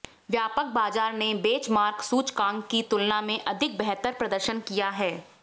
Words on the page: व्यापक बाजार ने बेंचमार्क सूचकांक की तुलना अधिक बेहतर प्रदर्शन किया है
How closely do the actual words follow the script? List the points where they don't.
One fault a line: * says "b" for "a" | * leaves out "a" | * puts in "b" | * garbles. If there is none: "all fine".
* puts in "में"